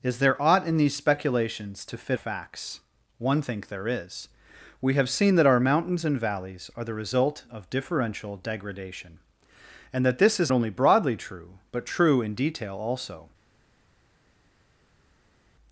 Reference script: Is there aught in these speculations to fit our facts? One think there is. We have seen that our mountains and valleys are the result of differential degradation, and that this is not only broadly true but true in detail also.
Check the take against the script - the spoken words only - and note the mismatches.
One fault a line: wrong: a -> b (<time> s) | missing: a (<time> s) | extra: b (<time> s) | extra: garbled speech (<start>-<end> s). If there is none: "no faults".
missing: our (2.2 s)
missing: not (10.5 s)